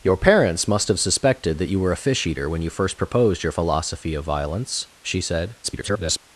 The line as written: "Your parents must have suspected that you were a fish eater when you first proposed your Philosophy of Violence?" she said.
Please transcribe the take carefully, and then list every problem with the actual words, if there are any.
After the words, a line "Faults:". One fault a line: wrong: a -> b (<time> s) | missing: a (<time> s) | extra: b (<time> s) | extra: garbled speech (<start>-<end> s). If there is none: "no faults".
"Your parents must have suspected that you were a fish eater when you first proposed your Philosophy of Violence?" she said. [garbled]
Faults:
extra: garbled speech (5.6-6.2 s)